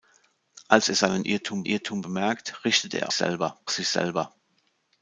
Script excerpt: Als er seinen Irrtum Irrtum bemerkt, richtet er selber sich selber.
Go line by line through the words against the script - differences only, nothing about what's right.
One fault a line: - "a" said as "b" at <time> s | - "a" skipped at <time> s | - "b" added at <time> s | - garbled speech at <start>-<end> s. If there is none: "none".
none